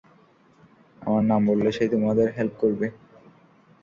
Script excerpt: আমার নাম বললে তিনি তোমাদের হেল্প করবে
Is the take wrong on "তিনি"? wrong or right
wrong